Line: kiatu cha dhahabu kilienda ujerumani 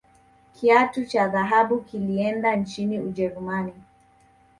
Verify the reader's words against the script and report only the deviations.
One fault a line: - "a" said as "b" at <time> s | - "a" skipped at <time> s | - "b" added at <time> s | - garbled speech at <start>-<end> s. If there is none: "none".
- "nchini" added at 2.5 s